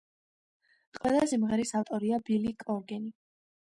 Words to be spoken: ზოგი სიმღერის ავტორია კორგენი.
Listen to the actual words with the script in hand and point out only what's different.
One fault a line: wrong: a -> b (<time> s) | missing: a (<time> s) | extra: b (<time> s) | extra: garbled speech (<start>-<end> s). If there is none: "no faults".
wrong: ზოგი -> ყველა (1.0 s)
extra: ბილი (2.3 s)